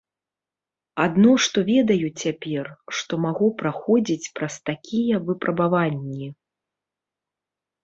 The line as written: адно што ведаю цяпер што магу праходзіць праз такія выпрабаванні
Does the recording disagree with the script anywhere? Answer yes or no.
no